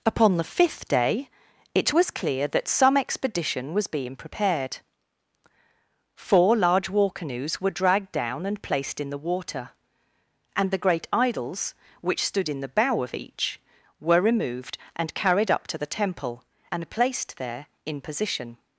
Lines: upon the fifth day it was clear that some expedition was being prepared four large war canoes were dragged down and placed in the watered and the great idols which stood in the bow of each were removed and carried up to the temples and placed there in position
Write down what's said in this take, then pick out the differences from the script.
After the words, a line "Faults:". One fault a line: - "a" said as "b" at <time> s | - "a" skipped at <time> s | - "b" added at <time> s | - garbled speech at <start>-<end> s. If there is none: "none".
upon the fifth day it was clear that some expedition was being prepared four large war canoes were dragged down and placed in the water and the great idols which stood in the bow of each were removed and carried up to the temple and placed there in position
Faults:
- "watered" said as "water" at 9.2 s
- "temples" said as "temple" at 15.9 s